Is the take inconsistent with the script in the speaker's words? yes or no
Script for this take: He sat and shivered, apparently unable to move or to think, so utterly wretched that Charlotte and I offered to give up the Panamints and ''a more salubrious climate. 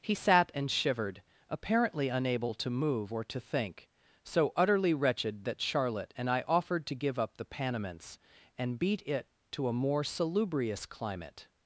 yes